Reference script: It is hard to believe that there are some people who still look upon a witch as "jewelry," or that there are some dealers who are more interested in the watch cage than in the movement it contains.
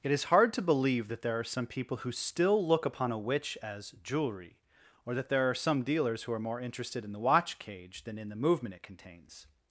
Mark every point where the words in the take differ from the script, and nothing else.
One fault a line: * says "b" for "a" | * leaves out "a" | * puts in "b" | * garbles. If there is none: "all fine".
all fine